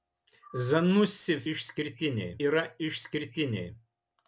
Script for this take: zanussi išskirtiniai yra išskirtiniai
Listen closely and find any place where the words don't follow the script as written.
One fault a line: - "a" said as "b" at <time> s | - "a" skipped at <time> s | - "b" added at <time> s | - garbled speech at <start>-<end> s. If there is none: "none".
none